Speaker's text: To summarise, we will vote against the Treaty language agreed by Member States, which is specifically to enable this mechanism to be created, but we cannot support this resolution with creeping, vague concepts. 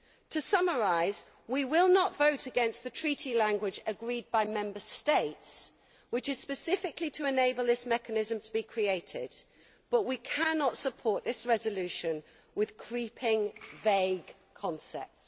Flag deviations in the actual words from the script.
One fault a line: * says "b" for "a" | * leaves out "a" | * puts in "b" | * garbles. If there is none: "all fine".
* puts in "not"